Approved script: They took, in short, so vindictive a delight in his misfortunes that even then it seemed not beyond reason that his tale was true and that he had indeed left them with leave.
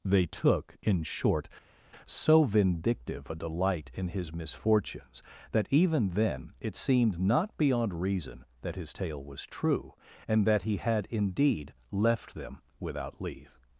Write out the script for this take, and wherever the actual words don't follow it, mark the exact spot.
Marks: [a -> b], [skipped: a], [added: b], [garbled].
They took, in short, so vindictive a delight in his misfortunes that even then it seemed not beyond reason that his tale was true and that he had indeed left them [with -> without] leave.